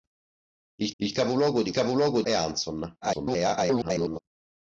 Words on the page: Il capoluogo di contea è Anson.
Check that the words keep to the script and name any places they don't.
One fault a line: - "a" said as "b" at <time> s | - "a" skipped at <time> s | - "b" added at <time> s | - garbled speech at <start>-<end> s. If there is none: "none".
- "il" added at 1.0 s
- "contea" said as "capoluogo" at 1.7 s
- garbled speech at 3.0-4.2 s